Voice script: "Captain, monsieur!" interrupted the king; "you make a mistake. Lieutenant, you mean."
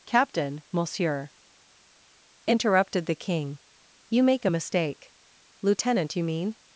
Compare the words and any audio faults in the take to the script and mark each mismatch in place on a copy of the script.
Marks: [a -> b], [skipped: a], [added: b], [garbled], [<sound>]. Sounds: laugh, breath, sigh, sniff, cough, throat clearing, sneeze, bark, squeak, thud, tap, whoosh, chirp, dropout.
"Captain, monsieur!" interrupted the king; "you make a mistake. Lieutenant, you mean."